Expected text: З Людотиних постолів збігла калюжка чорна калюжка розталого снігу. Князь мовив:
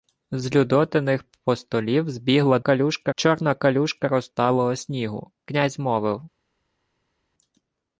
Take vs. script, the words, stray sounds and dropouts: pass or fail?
pass